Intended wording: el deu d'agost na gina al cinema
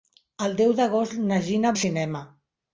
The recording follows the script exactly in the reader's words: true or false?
true